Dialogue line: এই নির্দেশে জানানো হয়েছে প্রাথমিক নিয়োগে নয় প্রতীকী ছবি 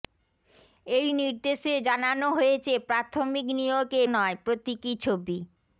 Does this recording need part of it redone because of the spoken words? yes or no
no